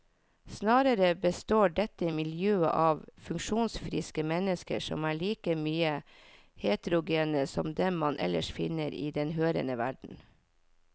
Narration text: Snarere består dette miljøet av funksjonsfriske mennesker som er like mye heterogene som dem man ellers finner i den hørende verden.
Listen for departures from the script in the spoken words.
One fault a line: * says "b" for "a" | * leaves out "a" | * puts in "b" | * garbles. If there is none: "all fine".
all fine